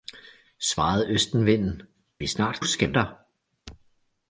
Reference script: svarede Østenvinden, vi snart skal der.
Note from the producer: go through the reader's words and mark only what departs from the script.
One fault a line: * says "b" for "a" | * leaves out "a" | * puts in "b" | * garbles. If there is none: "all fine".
all fine